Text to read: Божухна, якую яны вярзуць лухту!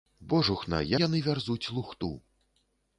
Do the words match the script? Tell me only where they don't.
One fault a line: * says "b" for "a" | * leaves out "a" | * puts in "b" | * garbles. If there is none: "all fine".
* leaves out "якую"